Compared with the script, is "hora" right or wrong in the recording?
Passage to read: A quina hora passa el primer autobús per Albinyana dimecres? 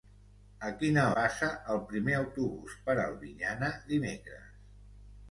wrong